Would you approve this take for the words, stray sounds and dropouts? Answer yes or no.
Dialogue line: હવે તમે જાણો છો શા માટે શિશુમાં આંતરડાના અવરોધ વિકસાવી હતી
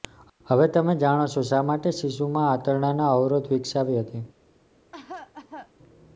no